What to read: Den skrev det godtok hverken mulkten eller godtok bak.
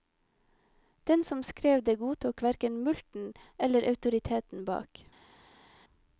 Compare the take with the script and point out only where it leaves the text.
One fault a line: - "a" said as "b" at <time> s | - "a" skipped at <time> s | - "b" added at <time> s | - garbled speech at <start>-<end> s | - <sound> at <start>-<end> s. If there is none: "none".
- "som" added at 1.2 s
- "godtok" said as "autoriteten" at 3.9 s